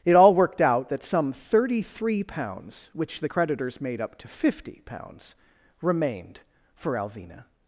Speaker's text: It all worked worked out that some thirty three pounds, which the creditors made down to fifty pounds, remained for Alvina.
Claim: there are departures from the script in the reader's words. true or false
true